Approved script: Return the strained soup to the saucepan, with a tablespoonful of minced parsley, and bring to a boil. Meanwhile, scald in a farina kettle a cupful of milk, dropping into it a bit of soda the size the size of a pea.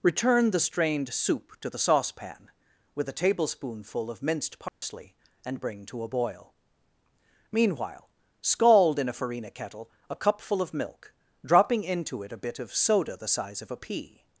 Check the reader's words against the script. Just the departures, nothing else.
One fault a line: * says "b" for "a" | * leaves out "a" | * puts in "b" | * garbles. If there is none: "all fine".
* leaves out "the size"